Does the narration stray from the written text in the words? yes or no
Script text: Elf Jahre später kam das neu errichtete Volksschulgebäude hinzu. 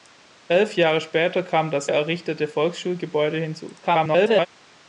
yes